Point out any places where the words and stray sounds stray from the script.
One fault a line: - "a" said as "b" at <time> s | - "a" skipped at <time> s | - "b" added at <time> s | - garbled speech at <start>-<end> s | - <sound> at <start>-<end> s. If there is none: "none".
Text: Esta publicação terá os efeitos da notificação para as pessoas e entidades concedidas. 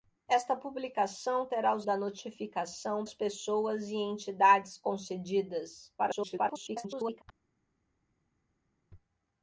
- "efeitos" skipped at 1.9 s
- "para" skipped at 3.1 s
- garbled speech at 6.0-7.2 s